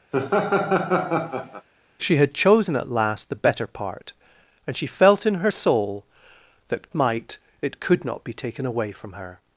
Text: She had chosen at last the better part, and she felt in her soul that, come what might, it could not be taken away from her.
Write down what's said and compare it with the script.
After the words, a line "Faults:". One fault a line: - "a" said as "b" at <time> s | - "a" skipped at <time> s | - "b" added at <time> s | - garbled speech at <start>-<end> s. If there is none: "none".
She had chosen at last the better part, and she felt in her soul that, might, it could not be taken away from her.
Faults:
- "come what" skipped at 6.9 s